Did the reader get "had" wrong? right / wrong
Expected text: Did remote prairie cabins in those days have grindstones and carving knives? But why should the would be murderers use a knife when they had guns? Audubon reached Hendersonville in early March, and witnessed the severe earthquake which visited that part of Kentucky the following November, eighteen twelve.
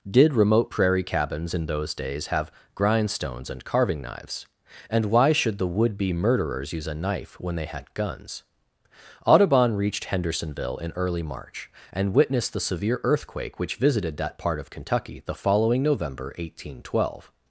right